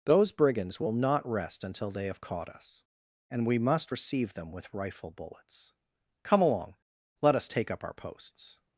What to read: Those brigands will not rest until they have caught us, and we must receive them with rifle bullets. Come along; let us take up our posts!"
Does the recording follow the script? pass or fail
pass